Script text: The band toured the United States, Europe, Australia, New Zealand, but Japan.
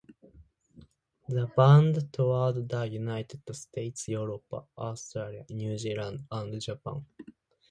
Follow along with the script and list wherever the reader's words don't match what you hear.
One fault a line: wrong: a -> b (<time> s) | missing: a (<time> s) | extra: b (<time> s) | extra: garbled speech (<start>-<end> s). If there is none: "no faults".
wrong: but -> and (6.3 s)